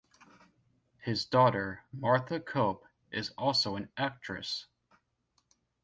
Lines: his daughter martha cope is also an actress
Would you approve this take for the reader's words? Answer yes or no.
yes